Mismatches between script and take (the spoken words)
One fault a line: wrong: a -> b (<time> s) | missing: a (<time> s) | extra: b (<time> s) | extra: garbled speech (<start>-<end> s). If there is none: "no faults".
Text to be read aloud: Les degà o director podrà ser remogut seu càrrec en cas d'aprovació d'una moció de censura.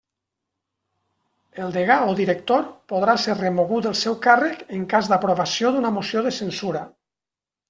wrong: Les -> El (1.6 s)
extra: del (3.9 s)